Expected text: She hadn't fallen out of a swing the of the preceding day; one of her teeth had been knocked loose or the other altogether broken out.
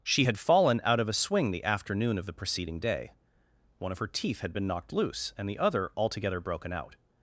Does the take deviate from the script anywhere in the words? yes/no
yes